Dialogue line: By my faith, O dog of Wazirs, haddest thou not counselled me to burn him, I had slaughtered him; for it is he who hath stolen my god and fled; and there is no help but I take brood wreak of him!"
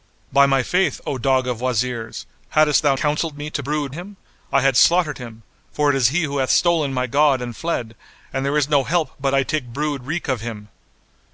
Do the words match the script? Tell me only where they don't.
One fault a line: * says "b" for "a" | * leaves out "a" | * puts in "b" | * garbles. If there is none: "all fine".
* leaves out "not"
* says "brood" for "burn"